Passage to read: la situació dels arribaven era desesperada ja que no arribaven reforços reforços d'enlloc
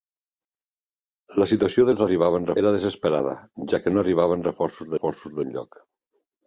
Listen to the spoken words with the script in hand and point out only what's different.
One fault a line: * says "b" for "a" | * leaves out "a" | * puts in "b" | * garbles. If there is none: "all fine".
all fine